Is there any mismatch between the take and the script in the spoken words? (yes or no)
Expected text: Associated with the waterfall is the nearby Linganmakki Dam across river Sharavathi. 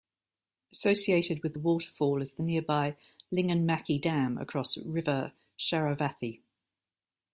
no